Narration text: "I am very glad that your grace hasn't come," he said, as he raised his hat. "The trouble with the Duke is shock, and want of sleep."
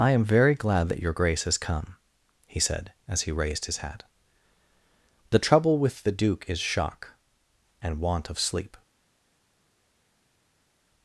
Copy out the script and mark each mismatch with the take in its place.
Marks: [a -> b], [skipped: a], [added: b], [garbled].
"I am very glad that your grace [hasn't -> has] come," he said, as he raised his hat. "The trouble with the Duke is shock, and want of sleep."